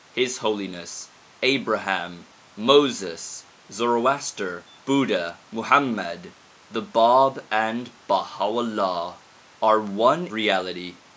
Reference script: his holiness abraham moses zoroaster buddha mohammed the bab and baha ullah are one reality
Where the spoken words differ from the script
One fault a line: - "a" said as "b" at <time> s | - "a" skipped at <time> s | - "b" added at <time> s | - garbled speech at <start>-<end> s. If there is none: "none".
none